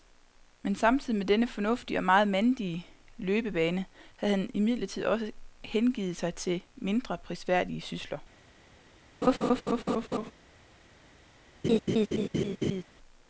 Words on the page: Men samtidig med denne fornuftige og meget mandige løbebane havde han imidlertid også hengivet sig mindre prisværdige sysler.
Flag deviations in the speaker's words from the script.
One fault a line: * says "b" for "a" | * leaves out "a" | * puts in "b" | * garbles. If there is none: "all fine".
* puts in "til"